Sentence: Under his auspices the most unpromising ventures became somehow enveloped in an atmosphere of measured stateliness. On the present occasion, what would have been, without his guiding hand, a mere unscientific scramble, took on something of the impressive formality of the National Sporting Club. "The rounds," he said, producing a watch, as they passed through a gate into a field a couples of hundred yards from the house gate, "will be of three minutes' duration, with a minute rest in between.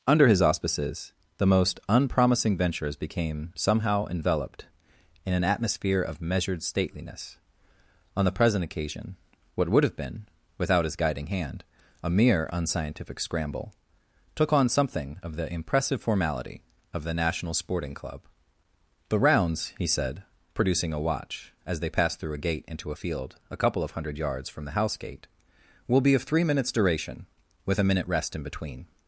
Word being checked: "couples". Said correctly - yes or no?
no